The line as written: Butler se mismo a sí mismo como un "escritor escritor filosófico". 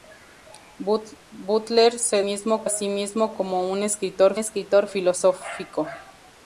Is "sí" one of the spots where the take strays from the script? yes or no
no